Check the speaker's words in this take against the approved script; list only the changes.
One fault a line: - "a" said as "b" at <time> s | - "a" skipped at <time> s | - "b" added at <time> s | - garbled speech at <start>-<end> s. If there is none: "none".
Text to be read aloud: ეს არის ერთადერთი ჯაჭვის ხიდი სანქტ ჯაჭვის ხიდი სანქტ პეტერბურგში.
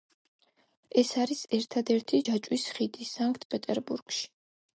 - "ჯაჭვის ხიდი სანქტ" skipped at 3.5 s